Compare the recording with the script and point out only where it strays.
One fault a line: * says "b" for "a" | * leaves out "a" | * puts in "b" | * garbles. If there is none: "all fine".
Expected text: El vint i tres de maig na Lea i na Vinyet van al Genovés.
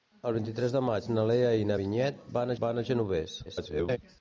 * puts in "van"
* garbles